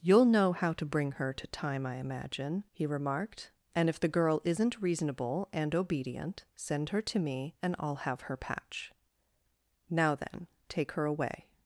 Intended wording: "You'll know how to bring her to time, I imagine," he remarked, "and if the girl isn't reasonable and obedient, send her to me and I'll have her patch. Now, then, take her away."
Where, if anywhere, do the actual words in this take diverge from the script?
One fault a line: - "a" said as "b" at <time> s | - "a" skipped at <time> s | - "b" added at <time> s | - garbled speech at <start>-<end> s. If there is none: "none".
none